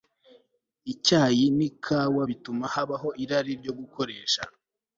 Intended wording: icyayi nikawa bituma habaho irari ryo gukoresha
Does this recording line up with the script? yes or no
yes